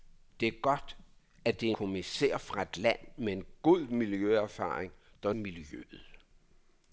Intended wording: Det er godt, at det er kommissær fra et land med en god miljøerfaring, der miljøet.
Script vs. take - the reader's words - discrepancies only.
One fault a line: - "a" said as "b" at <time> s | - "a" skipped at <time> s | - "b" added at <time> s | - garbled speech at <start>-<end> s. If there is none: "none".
none